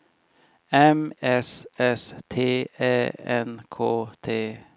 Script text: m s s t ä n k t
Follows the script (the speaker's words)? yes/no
yes